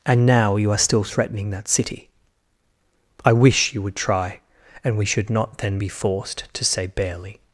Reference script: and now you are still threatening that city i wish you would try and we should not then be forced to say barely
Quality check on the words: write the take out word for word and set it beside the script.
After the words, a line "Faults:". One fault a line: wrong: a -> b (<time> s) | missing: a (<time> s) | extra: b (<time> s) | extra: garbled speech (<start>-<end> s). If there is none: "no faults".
and now you are still threatening that city i wish you would try and we should not then be forced to say barely
Faults:
no faults